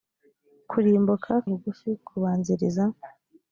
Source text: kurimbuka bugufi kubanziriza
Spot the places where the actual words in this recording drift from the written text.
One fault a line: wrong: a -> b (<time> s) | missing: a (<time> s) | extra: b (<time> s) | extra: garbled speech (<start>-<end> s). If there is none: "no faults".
no faults